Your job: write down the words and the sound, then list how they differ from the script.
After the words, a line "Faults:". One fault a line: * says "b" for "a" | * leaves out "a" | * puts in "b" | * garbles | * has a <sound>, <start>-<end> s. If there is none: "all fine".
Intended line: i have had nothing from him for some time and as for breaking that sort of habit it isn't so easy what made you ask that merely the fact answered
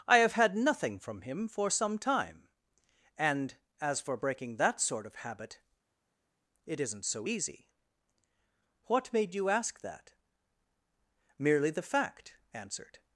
i have had nothing from him for some time and as for breaking that sort of habit it isn't so easy what made you ask that merely the fact answered
Faults:
all fine